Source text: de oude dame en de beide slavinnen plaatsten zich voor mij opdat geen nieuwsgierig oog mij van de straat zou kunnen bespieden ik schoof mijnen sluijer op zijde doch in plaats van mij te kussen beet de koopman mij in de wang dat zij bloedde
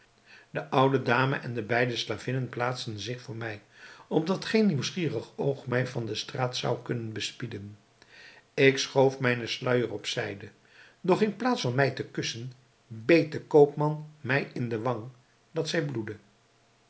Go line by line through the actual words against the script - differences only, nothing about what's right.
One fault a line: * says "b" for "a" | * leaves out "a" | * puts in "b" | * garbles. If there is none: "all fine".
all fine